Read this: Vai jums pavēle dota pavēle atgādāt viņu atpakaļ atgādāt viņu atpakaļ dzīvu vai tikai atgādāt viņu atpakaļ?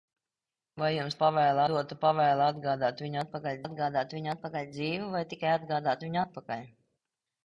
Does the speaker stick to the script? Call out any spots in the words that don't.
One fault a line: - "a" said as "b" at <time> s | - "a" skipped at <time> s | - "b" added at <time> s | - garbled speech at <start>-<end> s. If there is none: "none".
none